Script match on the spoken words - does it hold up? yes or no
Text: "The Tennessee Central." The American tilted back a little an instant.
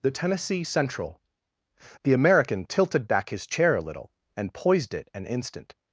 no